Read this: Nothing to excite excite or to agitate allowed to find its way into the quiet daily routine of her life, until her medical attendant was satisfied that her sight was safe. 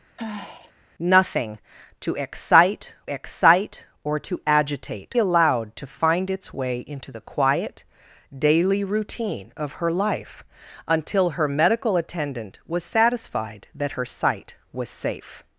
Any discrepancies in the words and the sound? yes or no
yes